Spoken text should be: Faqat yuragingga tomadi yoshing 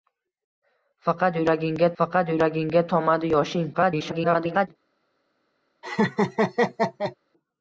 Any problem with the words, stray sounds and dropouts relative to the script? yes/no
yes